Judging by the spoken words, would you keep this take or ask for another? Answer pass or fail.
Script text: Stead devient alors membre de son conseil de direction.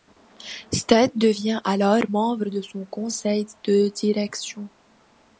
pass